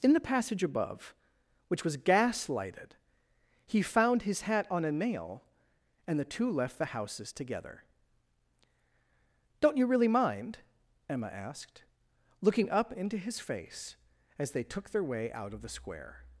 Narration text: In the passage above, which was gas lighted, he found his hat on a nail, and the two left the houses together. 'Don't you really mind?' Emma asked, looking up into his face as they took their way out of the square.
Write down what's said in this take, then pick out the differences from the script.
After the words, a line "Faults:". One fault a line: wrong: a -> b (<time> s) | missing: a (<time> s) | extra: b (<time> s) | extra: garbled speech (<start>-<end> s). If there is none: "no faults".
In the passage above, which was gas lighted, he found his hat on a nail, and the two left the houses together. 'Don't you really mind?' Emma asked, looking up into his face as they took their way out of the square.
Faults:
no faults